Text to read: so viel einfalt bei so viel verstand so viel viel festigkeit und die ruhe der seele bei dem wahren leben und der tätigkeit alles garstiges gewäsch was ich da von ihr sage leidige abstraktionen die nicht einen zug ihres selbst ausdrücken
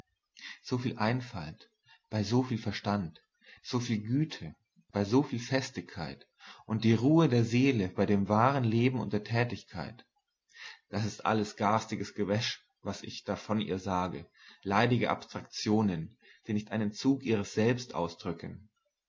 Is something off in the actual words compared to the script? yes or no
yes